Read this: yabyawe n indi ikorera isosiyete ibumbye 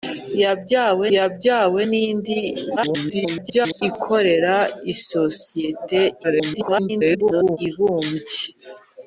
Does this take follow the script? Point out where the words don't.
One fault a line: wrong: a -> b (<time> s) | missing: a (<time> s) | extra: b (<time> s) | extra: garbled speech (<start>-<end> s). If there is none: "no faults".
extra: yabyawe (1.1 s)
extra: garbled speech (2.8-3.8 s)
extra: garbled speech (6.2-7.6 s)